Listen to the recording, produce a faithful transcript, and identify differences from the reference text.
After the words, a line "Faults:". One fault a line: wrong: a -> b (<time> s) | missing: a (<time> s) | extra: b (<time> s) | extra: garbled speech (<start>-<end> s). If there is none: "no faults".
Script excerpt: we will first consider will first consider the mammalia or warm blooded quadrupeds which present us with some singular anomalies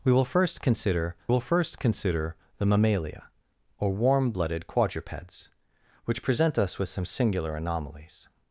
we will first consider will first consider the mammalia or warm blooded quadrupeds which present us with some singular anomalies
Faults:
no faults